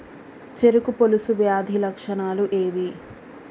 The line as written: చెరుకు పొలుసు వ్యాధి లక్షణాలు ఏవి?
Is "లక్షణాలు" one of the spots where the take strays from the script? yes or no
no